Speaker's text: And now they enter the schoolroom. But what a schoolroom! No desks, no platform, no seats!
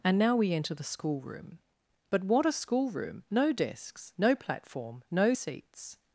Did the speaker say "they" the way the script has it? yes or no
no